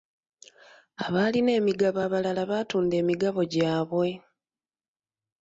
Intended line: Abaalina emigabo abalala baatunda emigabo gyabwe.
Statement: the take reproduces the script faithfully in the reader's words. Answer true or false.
true